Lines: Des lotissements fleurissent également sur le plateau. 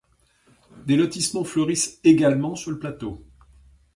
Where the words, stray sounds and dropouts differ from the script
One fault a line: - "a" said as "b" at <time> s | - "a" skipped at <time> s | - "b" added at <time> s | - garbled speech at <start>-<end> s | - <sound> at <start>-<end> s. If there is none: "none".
none